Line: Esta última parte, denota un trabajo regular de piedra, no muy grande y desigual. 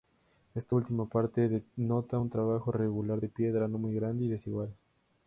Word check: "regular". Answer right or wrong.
right